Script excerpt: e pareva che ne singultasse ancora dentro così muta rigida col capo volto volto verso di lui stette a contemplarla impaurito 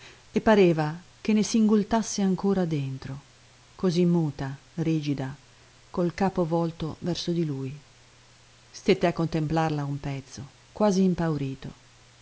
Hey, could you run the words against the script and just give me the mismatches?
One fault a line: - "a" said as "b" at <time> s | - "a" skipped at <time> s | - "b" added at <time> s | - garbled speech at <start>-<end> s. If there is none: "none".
- "volto" skipped at 7.0 s
- "un pezzo quasi" added at 9.8 s